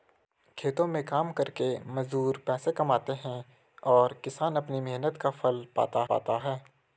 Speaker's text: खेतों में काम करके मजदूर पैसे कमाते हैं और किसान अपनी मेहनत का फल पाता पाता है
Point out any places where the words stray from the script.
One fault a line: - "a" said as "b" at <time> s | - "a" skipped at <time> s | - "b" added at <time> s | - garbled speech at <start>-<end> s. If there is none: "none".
none